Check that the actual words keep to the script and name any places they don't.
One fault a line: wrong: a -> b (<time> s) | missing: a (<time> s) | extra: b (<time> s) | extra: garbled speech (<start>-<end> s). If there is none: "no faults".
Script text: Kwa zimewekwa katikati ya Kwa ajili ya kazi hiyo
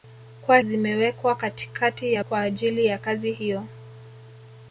no faults